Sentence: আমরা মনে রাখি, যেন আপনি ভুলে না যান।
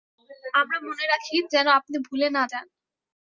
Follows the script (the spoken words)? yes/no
yes